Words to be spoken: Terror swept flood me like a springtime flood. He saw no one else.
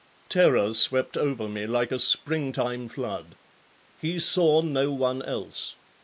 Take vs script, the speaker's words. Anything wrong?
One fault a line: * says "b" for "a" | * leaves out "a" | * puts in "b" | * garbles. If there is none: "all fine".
* says "over" for "flood"